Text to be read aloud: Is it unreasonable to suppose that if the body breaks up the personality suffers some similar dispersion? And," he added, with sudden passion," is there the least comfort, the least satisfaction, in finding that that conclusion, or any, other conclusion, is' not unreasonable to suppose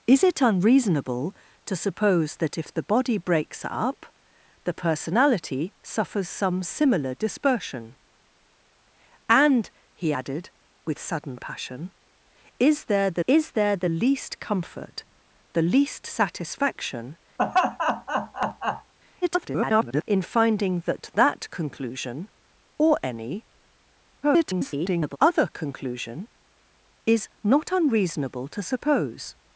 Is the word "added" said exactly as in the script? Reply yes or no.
yes